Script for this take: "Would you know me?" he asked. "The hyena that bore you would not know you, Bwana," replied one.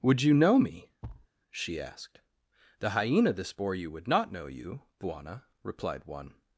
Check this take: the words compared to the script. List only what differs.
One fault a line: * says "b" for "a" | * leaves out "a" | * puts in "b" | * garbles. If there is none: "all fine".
* says "she" for "he"
* says "this" for "that"